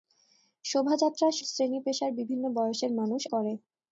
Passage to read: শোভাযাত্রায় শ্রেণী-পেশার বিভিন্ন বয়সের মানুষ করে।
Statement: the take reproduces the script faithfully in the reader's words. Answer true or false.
true